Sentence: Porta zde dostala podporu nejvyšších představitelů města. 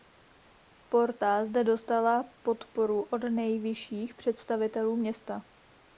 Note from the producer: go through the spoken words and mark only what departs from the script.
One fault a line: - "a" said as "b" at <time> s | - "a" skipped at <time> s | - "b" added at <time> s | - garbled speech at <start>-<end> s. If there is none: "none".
- "od" added at 3.0 s